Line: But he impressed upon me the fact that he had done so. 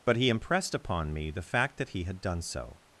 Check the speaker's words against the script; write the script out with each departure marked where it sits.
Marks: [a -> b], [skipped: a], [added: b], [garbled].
But he impressed upon me the fact that he had done so.